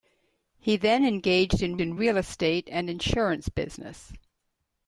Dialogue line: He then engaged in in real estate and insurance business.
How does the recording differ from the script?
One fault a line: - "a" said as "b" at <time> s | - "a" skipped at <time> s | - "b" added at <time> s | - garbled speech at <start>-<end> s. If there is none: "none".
none